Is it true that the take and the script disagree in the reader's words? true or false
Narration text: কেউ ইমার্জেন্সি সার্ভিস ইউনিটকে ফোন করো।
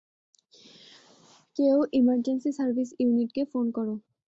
false